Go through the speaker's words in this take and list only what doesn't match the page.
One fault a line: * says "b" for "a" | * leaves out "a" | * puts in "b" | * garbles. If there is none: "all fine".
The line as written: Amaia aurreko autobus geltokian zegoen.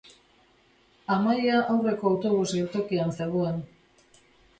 all fine